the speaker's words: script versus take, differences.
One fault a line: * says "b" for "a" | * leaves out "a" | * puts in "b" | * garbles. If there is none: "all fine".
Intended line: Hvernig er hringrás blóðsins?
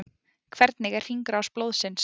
all fine